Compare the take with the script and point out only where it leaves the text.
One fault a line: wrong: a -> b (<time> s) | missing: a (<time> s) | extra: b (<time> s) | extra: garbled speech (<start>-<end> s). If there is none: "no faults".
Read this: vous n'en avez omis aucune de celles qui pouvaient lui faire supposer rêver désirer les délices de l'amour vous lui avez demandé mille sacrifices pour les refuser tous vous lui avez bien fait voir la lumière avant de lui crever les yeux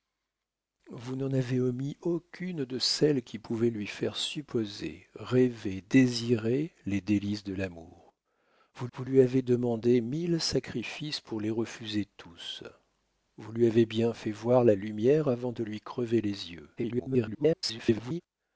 extra: vous (8.9 s)
extra: garbled speech (16.8-18.2 s)